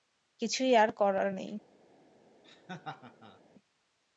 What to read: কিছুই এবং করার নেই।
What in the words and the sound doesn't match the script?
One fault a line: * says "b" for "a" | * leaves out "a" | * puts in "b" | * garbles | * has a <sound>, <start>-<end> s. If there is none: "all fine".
* says "আর" for "এবং"
* has a laugh, 2.4-3.4 s